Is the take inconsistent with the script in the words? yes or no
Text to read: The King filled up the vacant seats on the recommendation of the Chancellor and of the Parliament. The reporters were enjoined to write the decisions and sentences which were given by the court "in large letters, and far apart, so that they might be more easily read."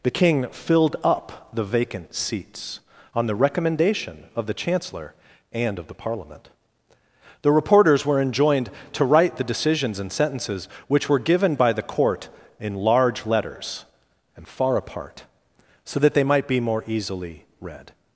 no